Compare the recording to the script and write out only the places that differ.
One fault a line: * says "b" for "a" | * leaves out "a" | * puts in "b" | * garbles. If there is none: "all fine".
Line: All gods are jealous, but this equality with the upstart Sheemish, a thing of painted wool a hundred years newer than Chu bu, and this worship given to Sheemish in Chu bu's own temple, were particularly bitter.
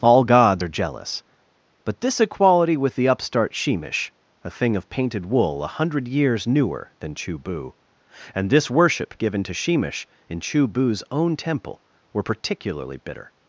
all fine